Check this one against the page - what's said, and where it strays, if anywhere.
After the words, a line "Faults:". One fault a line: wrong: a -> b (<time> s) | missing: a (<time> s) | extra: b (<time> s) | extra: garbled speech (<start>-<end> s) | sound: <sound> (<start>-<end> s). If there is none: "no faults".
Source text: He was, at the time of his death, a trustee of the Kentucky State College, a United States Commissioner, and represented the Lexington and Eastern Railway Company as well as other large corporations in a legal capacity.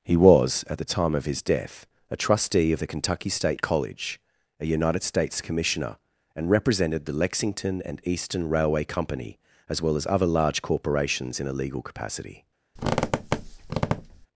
He was, at the time of his death, a trustee of the Kentucky State College, a United States Commissioner, and represented the Lexington and Eastern Railway Company as well as other large corporations in a legal capacity.
Faults:
sound: squeak (12.8-14.3 s)